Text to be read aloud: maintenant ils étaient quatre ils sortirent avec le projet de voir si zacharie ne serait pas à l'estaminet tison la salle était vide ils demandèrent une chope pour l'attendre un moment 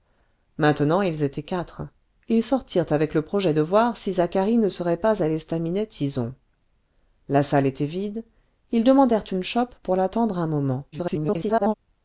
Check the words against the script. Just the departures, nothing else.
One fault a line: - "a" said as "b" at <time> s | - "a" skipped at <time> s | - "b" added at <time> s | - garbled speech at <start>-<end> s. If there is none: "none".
- garbled speech at 10.9-11.7 s